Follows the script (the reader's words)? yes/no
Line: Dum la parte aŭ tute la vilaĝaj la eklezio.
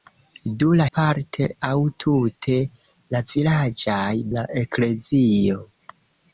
yes